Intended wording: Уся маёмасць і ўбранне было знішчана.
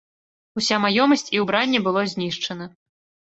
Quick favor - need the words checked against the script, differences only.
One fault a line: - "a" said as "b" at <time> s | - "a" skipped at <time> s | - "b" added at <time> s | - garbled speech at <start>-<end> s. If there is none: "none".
none